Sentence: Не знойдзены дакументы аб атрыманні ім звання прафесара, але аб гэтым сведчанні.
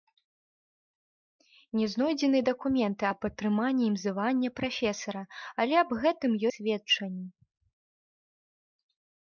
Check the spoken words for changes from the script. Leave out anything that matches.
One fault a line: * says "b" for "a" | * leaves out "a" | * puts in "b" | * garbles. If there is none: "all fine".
all fine